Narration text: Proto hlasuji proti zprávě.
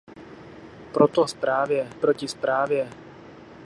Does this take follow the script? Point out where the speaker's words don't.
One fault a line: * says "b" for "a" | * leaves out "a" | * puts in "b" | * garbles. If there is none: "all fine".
* says "zprávě" for "hlasuji"